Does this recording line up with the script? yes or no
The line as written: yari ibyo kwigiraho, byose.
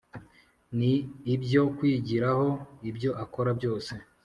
no